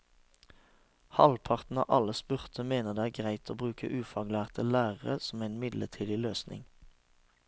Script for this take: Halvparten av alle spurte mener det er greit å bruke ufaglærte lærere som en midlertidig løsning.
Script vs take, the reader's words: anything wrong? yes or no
no